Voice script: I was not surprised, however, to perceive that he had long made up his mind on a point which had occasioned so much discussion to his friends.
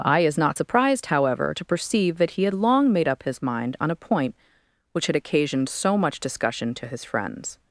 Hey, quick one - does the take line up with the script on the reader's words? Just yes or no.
no